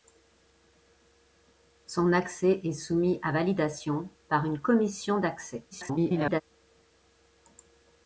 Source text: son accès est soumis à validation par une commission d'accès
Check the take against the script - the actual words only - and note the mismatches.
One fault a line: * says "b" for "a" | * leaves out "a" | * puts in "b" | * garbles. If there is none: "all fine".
* garbles